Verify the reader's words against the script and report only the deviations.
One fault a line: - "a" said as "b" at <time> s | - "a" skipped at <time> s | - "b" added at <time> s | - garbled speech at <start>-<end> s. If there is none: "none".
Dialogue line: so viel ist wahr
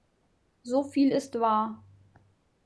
none